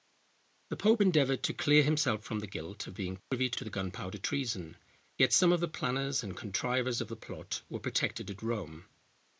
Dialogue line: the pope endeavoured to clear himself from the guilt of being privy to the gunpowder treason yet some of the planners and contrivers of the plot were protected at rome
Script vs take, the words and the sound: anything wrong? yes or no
yes